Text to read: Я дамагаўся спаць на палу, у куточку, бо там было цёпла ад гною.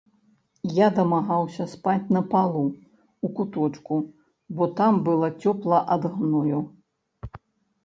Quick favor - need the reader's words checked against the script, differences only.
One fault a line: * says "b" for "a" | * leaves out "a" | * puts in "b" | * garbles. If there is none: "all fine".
all fine